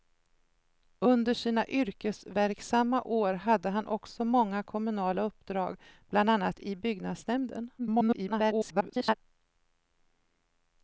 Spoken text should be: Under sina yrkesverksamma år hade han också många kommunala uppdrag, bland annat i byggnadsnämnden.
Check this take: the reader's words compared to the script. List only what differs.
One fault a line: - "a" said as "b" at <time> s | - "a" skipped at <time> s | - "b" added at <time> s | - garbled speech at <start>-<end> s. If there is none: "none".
- garbled speech at 7.8-9.1 s